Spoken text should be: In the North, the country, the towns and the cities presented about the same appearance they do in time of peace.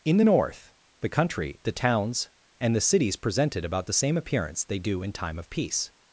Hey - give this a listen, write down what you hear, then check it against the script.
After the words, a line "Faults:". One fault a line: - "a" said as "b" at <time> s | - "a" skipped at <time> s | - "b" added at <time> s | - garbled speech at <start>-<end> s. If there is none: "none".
In the North, the country, the towns and the cities presented about the same appearance they do in time of peace.
Faults:
none